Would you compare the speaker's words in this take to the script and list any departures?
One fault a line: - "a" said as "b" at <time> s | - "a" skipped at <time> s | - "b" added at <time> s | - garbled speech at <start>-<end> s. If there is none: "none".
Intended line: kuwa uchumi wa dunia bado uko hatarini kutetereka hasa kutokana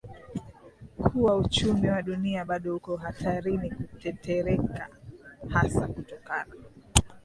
none